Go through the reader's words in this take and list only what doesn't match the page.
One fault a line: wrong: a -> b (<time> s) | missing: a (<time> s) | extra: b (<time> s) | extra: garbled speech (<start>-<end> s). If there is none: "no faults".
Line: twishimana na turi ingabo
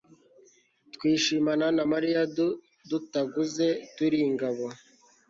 extra: mariya dutaguze (1.9 s)